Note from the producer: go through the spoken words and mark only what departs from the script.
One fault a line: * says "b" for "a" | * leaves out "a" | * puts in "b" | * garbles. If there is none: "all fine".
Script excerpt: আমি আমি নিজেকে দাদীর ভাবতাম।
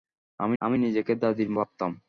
all fine